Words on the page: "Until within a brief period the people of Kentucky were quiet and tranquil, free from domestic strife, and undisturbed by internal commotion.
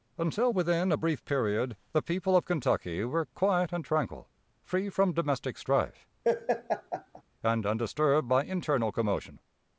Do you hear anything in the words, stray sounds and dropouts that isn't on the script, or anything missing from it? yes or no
yes